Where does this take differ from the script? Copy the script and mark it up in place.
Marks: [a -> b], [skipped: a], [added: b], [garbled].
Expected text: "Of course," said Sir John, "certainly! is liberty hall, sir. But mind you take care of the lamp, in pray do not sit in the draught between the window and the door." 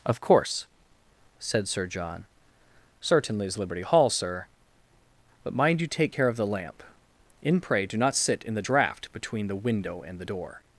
"Of course," said Sir John, "certainly! is liberty hall, sir. But mind you take care of the lamp, in pray do not sit in the draught between the window and the door."